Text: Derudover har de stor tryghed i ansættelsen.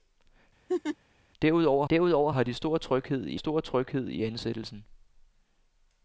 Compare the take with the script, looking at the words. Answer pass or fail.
fail